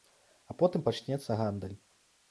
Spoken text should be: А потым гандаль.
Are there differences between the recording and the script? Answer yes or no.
yes